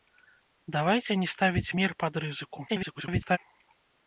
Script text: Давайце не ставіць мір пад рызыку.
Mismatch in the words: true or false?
true